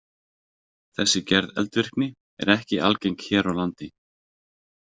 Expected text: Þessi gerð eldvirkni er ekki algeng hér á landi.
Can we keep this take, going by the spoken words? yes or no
yes